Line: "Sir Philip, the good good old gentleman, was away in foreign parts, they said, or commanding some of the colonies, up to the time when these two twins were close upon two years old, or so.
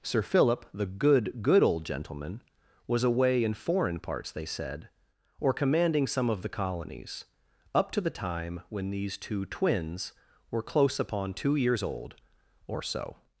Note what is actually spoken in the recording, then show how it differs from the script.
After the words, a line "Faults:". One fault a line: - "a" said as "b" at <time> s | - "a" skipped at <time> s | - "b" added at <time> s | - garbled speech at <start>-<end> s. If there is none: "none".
"Sir Philip, the good good old gentleman, was away in foreign parts, they said, or commanding some of the colonies, up to the time when these two twins were close upon two years old, or so.
Faults:
none